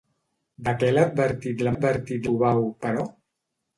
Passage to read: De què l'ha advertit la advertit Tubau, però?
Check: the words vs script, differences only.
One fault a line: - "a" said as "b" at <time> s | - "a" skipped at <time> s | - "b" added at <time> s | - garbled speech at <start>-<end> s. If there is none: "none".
none